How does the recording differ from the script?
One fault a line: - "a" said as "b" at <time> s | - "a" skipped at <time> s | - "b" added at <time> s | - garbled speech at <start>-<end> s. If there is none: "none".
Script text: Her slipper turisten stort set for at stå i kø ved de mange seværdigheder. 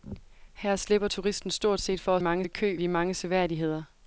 - "stå" said as "mange" at 2.2 s
- "ved" skipped at 2.8 s